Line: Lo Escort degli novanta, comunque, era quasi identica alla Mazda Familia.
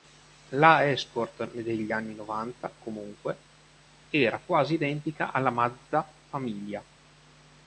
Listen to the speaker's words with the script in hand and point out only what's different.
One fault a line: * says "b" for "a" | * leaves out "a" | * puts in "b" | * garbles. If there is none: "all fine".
* says "La" for "Lo"
* puts in "anni"